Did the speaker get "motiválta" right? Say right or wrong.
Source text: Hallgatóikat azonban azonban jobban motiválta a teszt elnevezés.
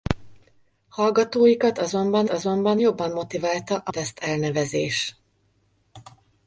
right